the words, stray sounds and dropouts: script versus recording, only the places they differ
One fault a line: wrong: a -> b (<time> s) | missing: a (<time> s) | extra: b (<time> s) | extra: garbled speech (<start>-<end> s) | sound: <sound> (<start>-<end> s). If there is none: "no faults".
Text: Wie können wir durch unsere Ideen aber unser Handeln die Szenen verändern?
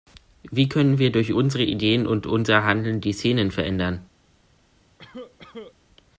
wrong: aber -> und (2.1 s)
sound: cough (5.0-5.8 s)